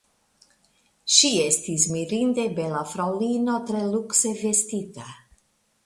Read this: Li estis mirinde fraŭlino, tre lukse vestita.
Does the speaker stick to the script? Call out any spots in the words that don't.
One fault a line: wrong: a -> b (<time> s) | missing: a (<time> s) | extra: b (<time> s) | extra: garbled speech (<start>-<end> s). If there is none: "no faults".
wrong: Li -> Ŝi (1.1 s)
extra: bela (2.6 s)